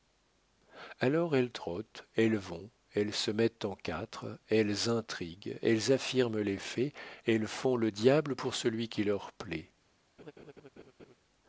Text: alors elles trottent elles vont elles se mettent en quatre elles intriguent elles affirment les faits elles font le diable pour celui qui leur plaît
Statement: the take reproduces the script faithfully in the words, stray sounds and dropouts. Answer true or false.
false